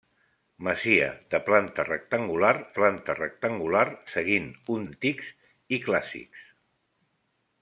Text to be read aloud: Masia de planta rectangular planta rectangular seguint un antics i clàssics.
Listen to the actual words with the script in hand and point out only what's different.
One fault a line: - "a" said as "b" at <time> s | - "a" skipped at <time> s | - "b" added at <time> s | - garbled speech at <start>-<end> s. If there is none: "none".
none